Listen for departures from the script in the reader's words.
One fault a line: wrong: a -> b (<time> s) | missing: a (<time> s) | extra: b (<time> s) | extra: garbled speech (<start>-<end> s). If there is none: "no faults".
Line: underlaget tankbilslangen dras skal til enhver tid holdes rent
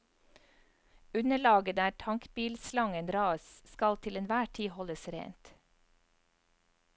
extra: der (1.8 s)